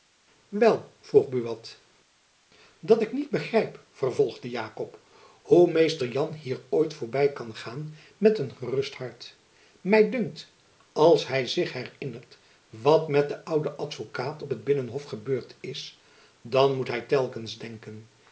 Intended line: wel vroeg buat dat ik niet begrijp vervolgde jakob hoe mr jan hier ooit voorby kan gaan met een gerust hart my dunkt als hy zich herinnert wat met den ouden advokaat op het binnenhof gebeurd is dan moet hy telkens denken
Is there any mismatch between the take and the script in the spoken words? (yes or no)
no